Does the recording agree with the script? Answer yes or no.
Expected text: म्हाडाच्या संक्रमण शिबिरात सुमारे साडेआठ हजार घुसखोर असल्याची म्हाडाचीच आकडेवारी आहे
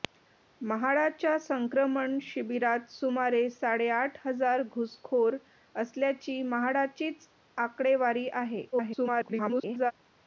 no